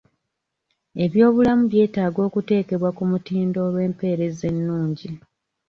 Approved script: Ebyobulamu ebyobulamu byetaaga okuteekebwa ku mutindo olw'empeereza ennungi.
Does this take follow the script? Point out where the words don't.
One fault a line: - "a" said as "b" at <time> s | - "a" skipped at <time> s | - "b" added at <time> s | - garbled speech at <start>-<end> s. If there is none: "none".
- "ebyobulamu" skipped at 1.6 s